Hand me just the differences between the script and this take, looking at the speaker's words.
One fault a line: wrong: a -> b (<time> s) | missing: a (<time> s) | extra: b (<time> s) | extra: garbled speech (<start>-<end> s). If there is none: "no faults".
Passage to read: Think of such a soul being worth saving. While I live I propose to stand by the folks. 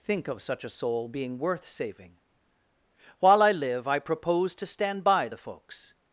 no faults